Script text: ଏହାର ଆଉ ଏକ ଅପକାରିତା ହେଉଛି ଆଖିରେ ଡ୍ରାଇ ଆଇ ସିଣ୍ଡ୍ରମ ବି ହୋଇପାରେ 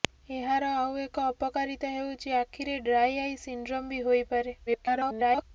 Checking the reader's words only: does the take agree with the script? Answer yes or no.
no